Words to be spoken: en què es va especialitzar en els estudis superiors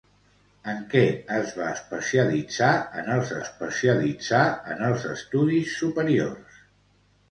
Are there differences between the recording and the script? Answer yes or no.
yes